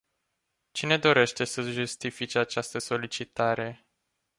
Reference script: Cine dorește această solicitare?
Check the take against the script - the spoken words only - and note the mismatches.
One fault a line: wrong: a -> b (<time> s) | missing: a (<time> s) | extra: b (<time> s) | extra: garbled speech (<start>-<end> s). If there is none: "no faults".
extra: să justifice (1.4 s)